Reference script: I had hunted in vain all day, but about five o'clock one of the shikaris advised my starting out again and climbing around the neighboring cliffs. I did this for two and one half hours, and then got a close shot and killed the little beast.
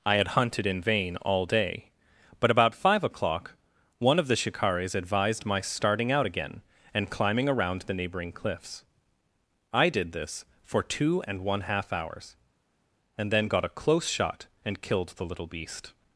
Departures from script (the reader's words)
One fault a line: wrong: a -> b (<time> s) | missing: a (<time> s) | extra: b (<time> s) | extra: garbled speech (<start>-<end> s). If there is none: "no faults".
no faults